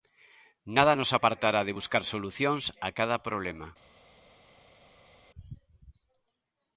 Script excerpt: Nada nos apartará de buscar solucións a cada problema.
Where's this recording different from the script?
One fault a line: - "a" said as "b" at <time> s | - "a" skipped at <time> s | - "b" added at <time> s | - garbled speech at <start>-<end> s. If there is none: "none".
none